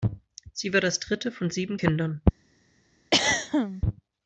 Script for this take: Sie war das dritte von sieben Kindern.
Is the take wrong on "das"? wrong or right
right